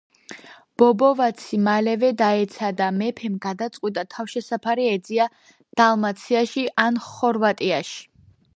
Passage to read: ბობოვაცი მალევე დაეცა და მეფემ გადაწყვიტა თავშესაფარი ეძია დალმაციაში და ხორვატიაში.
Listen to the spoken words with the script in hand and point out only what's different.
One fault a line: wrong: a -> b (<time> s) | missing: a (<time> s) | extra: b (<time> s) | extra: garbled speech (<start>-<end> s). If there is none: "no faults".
wrong: და -> ან (6.9 s)